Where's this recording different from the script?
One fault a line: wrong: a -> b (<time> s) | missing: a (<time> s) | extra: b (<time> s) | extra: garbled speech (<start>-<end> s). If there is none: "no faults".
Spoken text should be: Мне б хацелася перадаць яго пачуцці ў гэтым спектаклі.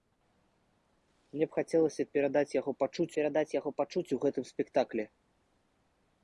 extra: перадаць яго пачуцці (3.2 s)